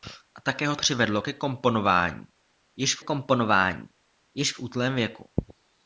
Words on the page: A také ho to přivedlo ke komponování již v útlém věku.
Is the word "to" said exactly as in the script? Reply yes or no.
no